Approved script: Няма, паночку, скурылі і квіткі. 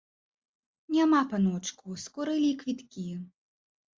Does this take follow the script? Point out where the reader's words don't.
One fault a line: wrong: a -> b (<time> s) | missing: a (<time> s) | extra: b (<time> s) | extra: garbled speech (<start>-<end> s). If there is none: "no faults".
no faults